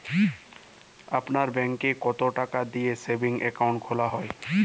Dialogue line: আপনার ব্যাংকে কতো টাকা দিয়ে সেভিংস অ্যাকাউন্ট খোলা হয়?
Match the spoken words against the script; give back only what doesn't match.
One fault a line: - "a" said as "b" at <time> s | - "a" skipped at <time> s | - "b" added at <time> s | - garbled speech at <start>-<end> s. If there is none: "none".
none